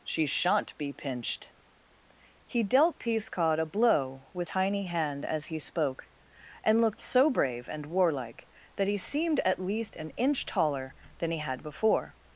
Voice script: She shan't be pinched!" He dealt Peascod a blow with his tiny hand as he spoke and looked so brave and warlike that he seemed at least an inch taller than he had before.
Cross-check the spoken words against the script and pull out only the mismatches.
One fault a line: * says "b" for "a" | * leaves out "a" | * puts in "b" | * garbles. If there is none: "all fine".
* leaves out "his"